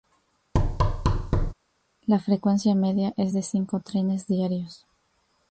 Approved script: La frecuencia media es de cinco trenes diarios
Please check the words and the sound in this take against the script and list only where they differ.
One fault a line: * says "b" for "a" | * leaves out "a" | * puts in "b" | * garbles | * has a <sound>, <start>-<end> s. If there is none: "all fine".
* has a thud, 0.5-1.5 s